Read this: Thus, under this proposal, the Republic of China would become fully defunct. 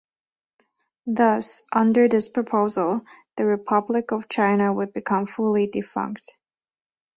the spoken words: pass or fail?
pass